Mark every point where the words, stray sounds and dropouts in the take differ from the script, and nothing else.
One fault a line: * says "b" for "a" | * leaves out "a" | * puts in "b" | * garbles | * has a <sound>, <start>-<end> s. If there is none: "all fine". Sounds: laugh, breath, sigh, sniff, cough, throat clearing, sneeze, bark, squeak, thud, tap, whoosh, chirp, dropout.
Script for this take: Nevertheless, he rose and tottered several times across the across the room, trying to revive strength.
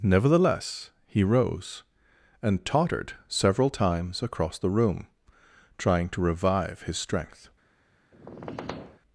* leaves out "across the"
* puts in "his"
* has a squeak, 8.1-9.0 s